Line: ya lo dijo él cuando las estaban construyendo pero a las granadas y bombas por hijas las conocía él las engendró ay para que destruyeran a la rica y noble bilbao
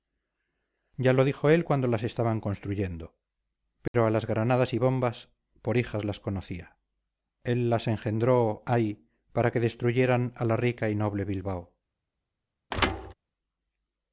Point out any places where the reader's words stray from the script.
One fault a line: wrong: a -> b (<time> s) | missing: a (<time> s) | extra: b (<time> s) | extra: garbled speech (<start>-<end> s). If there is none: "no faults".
no faults